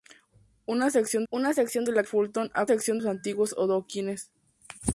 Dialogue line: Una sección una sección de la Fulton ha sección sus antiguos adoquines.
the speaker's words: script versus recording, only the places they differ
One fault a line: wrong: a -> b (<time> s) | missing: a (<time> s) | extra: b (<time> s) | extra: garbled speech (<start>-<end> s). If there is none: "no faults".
no faults